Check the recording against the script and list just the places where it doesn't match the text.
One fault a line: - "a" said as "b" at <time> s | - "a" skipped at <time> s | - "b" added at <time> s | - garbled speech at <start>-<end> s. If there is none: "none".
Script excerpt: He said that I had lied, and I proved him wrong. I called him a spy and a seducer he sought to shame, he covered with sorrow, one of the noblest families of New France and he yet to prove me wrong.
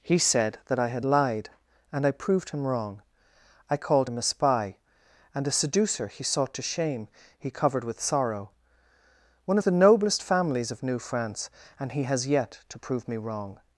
- "has" added at 12.0 s